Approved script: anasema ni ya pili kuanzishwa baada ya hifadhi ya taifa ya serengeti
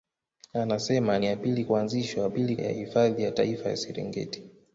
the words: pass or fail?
fail